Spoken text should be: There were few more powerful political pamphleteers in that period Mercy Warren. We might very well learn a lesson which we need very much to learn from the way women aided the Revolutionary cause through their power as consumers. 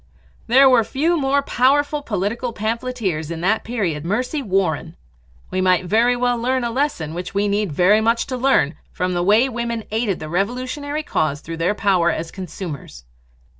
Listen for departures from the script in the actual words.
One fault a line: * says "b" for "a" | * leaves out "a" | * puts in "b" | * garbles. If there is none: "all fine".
all fine